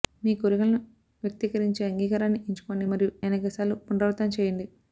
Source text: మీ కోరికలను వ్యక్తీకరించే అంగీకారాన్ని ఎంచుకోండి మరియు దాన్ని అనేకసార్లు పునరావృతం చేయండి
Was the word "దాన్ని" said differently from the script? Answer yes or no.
yes